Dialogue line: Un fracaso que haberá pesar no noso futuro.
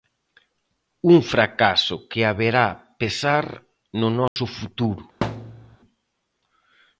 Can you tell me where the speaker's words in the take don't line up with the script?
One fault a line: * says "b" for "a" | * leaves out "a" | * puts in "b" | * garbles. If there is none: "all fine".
all fine